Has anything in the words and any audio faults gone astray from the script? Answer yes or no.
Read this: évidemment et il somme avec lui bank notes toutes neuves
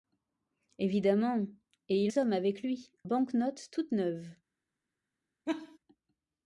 yes